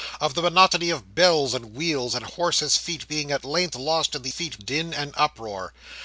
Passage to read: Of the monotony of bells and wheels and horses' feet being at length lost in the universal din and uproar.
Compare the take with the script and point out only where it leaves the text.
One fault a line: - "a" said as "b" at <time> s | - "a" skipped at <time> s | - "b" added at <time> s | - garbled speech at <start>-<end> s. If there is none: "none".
- "universal" said as "feet" at 4.3 s